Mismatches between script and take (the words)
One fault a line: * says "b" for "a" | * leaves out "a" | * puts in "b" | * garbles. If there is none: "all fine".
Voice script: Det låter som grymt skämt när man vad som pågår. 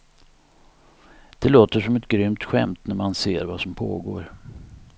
* puts in "ett"
* puts in "ser"